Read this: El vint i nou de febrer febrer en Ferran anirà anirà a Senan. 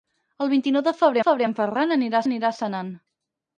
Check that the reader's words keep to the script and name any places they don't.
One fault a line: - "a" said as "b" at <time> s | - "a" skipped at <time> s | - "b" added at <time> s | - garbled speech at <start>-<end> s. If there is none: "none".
none